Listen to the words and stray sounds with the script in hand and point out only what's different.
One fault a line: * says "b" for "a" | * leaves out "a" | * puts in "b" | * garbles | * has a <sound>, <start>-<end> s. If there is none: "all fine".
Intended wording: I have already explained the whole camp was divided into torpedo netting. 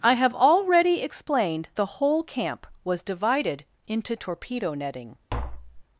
* has a tap, 5.3-5.8 s